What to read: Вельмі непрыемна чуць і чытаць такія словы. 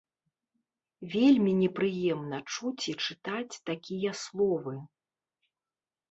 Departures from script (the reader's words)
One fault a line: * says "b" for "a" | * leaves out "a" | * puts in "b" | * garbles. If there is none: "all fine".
all fine